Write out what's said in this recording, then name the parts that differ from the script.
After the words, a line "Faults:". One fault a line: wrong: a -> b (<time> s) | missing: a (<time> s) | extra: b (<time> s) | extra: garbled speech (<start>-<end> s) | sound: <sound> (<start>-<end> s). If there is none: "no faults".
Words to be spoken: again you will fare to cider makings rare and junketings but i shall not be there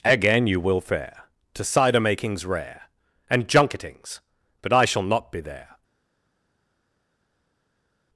again you will fare to cider makings rare and junketings but i shall not be there
Faults:
no faults